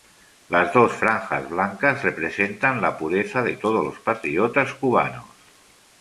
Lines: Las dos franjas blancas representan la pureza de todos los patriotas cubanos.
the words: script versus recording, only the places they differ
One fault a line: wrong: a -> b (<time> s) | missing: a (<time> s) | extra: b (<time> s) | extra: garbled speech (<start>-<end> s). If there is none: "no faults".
no faults